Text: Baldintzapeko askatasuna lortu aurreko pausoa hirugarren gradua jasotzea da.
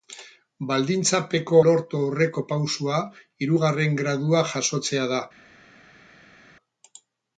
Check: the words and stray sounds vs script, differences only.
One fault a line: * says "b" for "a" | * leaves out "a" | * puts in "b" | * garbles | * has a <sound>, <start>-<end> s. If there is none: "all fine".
* leaves out "askatasuna"